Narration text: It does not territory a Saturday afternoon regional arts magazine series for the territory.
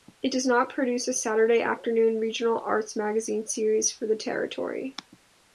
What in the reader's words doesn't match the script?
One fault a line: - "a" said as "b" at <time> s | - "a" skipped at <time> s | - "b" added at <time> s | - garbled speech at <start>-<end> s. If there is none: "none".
- "territory" said as "produce" at 0.7 s